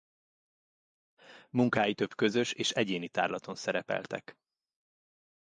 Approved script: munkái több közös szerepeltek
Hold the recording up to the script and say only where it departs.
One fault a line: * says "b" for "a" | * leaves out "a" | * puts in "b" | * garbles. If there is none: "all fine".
* puts in "és egyéni tárlaton"